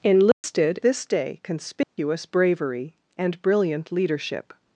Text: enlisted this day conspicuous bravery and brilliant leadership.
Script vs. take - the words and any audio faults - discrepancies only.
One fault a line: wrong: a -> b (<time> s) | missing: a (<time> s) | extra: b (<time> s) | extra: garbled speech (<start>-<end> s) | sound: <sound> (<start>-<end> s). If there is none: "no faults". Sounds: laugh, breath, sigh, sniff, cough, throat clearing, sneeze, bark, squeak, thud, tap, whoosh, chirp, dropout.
sound: dropout (0.3-0.4 s)
sound: dropout (1.8-2.0 s)